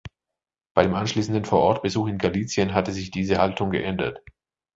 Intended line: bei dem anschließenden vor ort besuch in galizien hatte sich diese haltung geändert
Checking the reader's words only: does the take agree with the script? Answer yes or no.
yes